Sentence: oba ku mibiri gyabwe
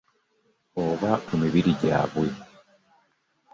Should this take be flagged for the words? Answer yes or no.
no